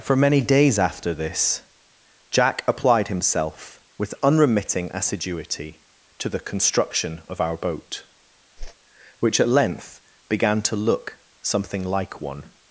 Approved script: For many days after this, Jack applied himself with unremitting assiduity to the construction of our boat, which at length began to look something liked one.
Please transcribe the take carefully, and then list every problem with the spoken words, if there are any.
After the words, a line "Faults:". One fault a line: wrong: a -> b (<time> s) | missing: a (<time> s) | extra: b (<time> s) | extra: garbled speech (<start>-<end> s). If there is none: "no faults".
For many days after this, Jack applied himself with unremitting assiduity to the construction of our boat, which at length began to look something like one.
Faults:
wrong: liked -> like (11.8 s)